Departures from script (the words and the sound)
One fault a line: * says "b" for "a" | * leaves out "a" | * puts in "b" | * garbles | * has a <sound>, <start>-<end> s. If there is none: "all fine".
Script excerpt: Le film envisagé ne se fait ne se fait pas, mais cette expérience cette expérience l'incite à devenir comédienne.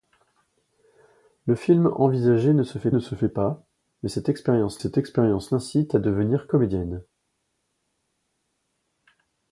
all fine